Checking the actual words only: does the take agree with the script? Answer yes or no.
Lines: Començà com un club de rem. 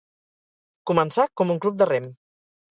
yes